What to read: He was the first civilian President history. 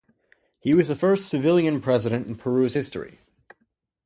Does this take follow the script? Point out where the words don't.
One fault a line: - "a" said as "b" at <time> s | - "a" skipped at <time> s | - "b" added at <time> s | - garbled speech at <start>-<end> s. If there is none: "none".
- "in Peru's" added at 2.3 s